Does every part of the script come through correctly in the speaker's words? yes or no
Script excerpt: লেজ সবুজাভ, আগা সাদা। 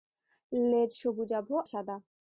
no